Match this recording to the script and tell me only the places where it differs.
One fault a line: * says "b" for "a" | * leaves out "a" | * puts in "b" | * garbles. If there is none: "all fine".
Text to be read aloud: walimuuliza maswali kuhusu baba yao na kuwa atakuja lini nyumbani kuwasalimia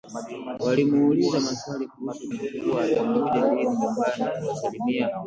* leaves out "baba yao"